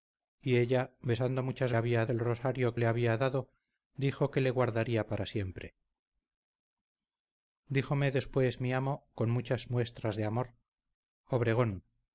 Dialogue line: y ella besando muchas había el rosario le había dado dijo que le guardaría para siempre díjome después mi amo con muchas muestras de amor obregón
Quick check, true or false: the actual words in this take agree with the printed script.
true